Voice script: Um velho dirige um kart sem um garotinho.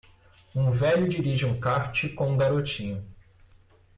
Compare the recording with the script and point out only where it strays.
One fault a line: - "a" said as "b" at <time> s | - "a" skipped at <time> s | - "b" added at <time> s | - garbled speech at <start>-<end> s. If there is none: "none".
- "sem" said as "com" at 2.1 s